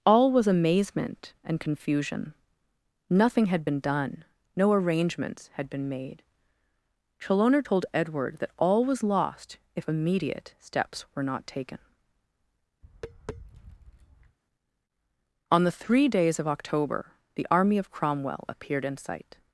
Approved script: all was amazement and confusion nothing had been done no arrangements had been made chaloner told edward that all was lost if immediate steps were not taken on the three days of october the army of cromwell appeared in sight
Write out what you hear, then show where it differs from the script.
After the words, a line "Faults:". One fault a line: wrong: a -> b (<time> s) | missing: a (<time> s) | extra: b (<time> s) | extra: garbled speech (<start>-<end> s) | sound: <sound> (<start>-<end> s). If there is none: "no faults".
all was amazement and confusion nothing had been done no arrangements had been made chaloner told edward that all was lost if immediate steps were not taken on the three days of october the army of cromwell appeared in sight
Faults:
sound: tap (12.8-14.4 s)